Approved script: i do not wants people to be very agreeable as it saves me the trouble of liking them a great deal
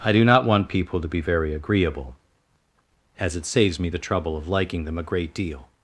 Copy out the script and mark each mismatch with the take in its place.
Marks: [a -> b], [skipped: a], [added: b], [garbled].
i do not [wants -> want] people to be very agreeable as it saves me the trouble of liking them a great deal